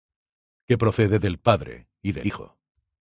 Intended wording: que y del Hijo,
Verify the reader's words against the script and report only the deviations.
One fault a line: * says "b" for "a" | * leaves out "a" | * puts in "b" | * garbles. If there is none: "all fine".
* puts in "procede del Padre"